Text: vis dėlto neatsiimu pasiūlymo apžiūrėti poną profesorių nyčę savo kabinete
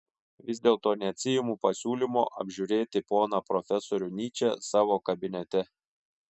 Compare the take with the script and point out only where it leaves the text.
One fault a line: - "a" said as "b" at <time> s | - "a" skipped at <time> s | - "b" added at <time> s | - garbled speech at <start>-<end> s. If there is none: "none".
none